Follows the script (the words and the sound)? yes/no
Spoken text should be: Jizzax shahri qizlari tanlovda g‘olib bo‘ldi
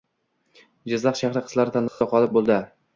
no